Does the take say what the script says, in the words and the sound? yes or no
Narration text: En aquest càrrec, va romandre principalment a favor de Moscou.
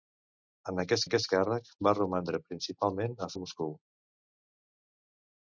no